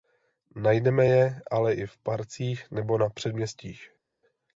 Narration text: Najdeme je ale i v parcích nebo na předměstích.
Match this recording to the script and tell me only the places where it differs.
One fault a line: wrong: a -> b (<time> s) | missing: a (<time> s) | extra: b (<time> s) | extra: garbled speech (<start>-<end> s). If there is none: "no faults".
no faults